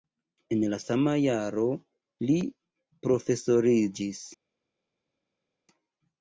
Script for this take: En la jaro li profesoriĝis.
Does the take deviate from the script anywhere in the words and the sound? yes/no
yes